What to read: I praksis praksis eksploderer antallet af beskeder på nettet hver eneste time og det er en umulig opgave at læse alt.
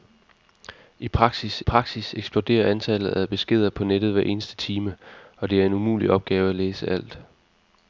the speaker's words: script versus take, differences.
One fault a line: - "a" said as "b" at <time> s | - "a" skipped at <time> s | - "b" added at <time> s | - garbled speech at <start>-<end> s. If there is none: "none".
none